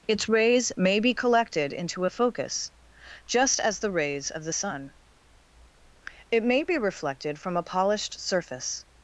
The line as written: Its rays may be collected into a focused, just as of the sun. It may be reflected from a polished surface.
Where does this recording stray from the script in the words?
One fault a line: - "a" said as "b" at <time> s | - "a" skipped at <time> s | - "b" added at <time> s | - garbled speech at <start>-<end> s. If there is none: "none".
- "focused" said as "focus" at 2.1 s
- "the rays" added at 3.8 s